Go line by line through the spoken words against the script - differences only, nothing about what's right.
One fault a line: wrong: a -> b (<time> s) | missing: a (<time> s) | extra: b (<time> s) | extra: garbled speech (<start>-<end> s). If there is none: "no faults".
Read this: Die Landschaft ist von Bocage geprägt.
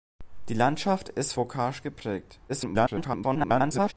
missing: von (1.3 s)
extra: garbled speech (2.5-3.9 s)